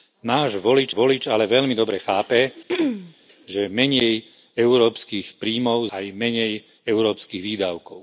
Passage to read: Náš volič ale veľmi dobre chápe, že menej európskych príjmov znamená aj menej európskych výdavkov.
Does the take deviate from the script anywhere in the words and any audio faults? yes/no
yes